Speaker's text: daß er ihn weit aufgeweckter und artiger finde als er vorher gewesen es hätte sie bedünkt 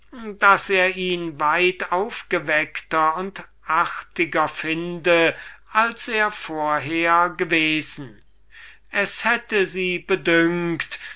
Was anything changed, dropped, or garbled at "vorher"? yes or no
no